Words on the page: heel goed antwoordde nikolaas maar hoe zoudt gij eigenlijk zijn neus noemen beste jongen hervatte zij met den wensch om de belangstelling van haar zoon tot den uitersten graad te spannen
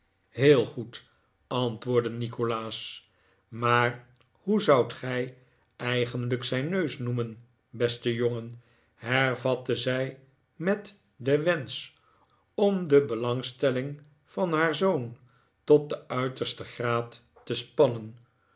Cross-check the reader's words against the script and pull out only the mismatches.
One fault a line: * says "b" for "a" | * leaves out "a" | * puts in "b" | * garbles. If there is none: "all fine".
all fine